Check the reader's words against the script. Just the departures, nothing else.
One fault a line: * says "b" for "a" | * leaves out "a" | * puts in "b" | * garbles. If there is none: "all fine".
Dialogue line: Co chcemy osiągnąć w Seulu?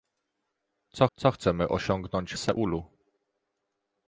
* puts in "co"
* leaves out "w"